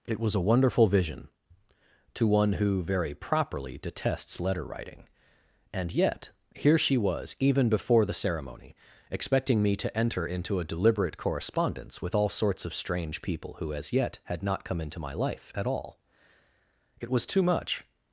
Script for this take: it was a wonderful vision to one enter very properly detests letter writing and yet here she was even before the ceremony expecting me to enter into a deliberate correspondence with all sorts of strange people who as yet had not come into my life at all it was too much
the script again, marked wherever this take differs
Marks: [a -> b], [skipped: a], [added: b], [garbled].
it was a wonderful vision to one [enter -> who] very properly detests letter writing and yet here she was even before the ceremony expecting me to enter into a deliberate correspondence with all sorts of strange people who as yet had not come into my life at all it was too much